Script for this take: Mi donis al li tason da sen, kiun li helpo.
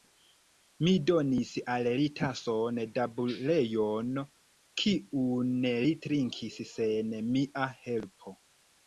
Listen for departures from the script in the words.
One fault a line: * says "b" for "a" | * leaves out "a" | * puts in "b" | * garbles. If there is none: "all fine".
* says "buljono" for "sen"
* puts in "trinkis sen mia"